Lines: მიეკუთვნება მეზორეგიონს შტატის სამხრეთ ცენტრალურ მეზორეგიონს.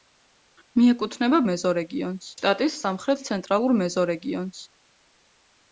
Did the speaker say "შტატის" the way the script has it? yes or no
yes